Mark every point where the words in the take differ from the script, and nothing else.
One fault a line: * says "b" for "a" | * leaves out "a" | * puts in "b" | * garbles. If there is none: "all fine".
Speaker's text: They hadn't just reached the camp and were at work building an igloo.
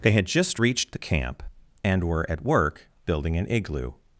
* says "had" for "hadn't"